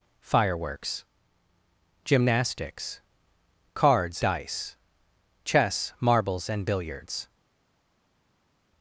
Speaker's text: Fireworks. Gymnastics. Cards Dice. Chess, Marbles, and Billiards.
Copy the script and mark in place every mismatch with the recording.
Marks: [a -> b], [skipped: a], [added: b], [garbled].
Fireworks. Gymnastics. Cards Dice. Chess, Marbles, and Billiards.